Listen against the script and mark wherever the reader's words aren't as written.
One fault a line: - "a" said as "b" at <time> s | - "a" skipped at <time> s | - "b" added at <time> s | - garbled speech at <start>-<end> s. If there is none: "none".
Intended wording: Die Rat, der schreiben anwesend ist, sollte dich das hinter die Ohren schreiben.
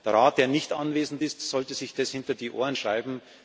- "Die" said as "Der" at 0.0 s
- "schreiben" said as "nicht" at 0.5 s
- "dich" said as "sich" at 1.7 s